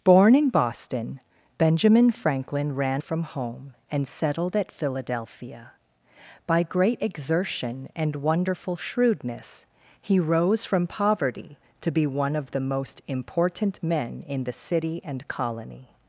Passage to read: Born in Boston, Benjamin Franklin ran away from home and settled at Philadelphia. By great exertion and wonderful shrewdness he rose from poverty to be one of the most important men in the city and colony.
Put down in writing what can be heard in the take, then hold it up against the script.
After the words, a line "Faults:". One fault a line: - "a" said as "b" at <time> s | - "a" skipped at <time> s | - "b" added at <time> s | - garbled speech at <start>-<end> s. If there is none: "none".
Born in Boston, Benjamin Franklin ran from home and settled at Philadelphia. By great exertion and wonderful shrewdness he rose from poverty to be one of the most important men in the city and colony.
Faults:
- "away" skipped at 3.0 s